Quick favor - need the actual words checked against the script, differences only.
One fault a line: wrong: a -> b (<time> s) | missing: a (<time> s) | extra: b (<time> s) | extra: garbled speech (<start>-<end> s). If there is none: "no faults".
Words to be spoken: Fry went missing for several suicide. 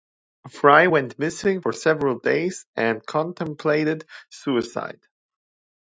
extra: days and contemplated (2.2 s)